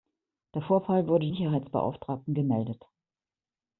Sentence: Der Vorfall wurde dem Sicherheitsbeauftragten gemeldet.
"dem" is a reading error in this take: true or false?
true